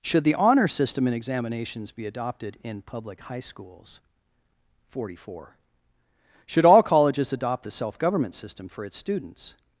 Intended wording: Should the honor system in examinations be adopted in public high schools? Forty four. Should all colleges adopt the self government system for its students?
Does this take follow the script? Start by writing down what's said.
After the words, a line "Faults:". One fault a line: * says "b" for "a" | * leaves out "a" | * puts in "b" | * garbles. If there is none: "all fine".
Should the honor system in examinations be adopted in public high schools? Forty four. Should all colleges adopt the self government system for its students?
Faults:
all fine